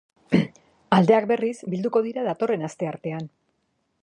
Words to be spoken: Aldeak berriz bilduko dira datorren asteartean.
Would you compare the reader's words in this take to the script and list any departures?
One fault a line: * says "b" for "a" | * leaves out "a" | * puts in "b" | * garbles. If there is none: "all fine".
all fine